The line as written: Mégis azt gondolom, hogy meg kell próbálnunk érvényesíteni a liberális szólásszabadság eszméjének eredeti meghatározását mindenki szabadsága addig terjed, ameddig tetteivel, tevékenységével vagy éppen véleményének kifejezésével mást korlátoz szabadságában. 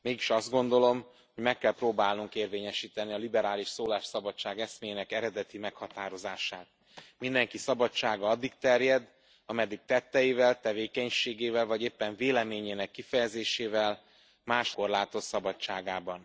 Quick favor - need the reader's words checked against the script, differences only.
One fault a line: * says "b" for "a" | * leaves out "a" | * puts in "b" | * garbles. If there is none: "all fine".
all fine